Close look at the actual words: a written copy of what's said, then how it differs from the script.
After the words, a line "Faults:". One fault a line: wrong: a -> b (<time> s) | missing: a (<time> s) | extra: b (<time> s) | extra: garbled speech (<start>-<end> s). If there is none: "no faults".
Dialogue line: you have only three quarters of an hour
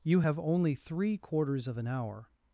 you have only three quarters of an hour
Faults:
no faults